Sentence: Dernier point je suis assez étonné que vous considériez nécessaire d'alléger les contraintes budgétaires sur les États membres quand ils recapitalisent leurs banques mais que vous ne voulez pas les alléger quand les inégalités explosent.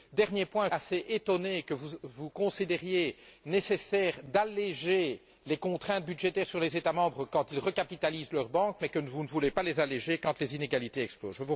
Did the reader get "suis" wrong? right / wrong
wrong